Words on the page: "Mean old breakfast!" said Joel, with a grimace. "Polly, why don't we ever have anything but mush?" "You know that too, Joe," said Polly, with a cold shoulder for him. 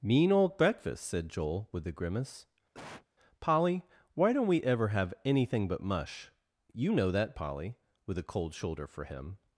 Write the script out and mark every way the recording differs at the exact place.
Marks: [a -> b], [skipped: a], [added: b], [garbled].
"Mean old breakfast!" said Joel, with a grimace. "Polly, why don't we ever have anything but mush?" "You know that [skipped: too, Joe," said] Polly, with a cold shoulder for him.